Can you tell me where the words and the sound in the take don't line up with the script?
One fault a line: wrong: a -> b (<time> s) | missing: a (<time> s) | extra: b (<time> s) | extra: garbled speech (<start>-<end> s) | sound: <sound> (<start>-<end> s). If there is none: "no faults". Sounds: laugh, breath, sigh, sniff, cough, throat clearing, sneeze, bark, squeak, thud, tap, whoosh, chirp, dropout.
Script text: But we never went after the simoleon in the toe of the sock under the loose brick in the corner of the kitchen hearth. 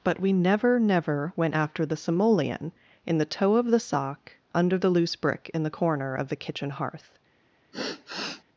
extra: never (0.8 s)
sound: sigh (7.7-8.4 s)